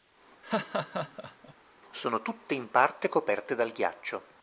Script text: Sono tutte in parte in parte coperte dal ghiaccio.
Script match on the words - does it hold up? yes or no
no